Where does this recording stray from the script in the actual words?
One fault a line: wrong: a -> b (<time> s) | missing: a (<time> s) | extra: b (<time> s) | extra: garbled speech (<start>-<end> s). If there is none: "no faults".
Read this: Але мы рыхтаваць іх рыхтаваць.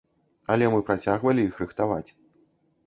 wrong: рыхтаваць -> працягвалі (0.9 s)